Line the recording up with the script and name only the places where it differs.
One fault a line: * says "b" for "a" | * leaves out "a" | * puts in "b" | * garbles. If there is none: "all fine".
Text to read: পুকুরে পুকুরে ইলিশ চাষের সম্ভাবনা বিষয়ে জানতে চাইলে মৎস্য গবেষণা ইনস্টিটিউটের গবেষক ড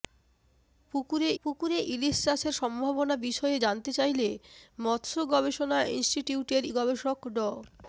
all fine